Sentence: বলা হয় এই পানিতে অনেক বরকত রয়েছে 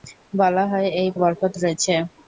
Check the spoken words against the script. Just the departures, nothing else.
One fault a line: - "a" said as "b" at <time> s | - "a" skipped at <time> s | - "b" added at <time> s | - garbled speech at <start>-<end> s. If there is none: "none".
- "পানিতে অনেক" skipped at 1.1 s